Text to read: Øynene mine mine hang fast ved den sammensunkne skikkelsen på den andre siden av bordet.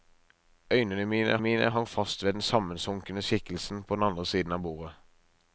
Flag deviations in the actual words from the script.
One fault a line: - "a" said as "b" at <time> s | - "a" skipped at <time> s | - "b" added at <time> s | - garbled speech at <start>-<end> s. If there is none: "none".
none